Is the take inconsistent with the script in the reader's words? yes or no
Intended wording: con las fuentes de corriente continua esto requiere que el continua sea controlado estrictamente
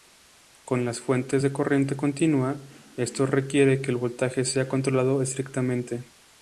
yes